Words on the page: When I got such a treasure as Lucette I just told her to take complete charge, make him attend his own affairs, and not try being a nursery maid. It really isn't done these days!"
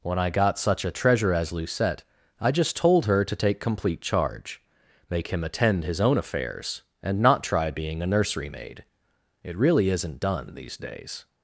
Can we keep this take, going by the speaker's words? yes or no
yes